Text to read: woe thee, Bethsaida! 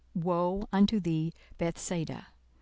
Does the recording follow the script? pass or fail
fail